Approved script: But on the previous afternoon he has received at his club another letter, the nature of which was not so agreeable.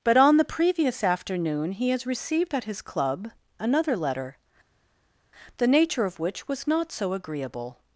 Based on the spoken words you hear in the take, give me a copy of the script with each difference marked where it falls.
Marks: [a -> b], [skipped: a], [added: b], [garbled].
But on the previous afternoon he has received at his club another letter, the nature of which was not so agreeable.